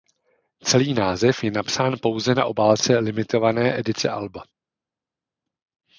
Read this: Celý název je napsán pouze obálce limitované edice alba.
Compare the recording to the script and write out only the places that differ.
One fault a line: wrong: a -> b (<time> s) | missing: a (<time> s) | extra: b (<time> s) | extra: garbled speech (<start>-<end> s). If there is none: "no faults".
extra: na (2.3 s)